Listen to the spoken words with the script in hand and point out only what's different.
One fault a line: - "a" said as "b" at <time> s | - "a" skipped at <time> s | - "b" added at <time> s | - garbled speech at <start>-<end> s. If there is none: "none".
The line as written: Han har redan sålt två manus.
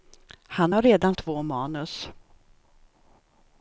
- "sålt" skipped at 1.1 s